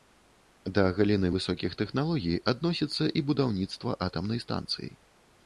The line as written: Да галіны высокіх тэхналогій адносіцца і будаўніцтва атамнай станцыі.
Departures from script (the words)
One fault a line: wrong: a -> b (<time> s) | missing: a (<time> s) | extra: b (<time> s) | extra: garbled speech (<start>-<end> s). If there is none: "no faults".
no faults